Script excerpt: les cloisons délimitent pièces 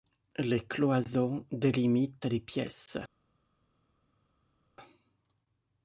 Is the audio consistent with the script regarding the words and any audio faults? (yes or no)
no